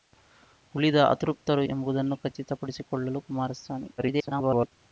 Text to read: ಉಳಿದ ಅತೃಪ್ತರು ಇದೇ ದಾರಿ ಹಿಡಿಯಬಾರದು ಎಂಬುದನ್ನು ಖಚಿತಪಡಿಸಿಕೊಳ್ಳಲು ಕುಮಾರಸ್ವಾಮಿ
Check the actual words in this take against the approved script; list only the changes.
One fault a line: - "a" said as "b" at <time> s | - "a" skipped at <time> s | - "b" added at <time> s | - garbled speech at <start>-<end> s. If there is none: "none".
- "ಇದೇ ದಾರಿ ಹಿಡಿಯಬಾರದು" skipped at 1.6 s
- garbled speech at 4.0-4.7 s